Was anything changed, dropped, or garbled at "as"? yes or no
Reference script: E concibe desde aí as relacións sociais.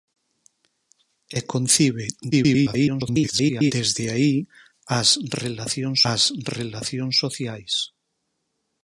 no